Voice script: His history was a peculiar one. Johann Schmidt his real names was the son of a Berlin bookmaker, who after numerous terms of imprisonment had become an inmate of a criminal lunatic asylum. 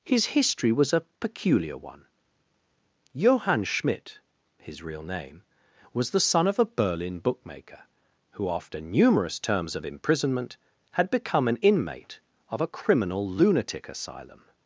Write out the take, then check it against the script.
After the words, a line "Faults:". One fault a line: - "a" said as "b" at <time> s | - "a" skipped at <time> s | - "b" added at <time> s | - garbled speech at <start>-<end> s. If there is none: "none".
His history was a peculiar one. Johann Schmidt his real name was the son of a Berlin bookmaker, who after numerous terms of imprisonment had become an inmate of a criminal lunatic asylum.
Faults:
- "names" said as "name" at 5.0 s